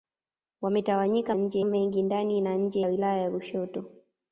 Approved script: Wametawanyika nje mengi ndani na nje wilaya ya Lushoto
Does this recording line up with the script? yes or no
yes